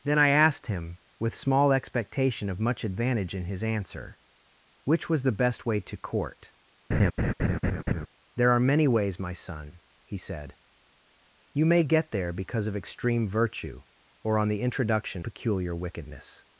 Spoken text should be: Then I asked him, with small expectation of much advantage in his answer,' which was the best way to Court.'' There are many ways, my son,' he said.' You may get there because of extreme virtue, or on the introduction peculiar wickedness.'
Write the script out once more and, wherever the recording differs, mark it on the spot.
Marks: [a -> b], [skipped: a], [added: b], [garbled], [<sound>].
Then I asked him, with small expectation of much advantage in his answer,' which was the best way to Court.'' [laugh] There are many ways, my son,' he said.' You may get there because of extreme virtue, or on the introduction peculiar wickedness.'